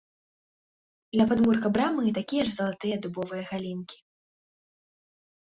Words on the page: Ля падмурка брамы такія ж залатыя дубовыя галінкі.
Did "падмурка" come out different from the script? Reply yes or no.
no